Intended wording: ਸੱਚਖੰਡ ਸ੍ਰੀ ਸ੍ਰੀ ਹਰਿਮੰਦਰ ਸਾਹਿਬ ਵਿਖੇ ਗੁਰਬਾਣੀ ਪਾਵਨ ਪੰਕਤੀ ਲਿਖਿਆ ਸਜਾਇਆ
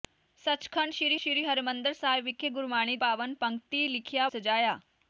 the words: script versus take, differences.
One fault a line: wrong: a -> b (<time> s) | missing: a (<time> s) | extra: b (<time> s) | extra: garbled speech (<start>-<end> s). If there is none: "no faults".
no faults